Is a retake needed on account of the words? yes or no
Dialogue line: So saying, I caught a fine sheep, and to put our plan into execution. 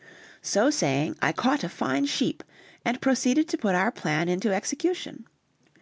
yes